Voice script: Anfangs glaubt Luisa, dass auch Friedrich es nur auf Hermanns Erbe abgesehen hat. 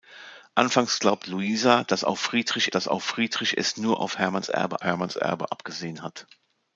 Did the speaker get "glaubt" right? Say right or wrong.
right